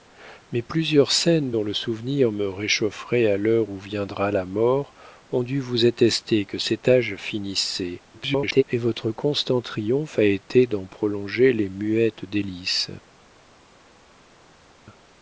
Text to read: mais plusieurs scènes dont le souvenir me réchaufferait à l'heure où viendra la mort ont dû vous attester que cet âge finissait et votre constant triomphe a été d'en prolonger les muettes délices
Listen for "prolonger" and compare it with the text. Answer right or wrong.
right